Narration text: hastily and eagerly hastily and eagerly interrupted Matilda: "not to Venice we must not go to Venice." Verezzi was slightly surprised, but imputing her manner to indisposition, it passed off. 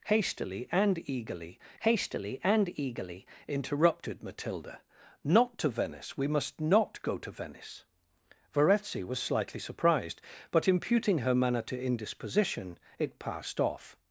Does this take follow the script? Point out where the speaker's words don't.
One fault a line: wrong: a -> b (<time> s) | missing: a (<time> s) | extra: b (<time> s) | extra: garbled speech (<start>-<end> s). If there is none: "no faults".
no faults